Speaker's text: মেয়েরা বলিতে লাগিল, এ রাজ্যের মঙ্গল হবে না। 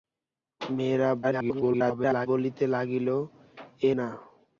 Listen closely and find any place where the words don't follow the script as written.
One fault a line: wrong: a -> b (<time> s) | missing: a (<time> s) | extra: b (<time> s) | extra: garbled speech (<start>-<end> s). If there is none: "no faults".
extra: garbled speech (1.2-2.3 s)
missing: রাজ্যের মঙ্গল হবে (3.9 s)